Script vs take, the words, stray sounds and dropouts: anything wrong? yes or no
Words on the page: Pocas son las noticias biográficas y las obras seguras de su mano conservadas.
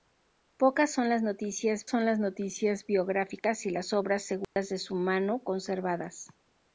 yes